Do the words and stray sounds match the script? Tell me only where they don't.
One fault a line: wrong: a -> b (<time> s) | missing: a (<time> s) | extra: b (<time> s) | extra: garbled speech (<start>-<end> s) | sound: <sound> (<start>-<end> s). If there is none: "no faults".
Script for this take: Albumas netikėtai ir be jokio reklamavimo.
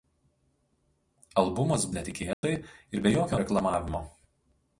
sound: dropout (2.3-2.4 s)